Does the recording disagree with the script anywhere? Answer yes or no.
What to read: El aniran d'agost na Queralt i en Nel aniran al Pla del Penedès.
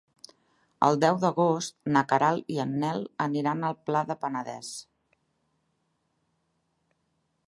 yes